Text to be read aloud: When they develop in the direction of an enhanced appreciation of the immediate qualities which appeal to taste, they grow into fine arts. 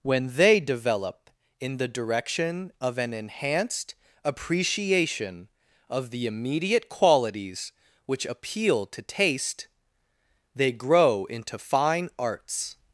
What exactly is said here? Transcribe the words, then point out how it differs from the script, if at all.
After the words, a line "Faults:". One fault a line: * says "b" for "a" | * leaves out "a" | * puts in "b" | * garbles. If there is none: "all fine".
When they develop in the direction of an enhanced appreciation of the immediate qualities which appeal to taste, they grow into fine arts.
Faults:
all fine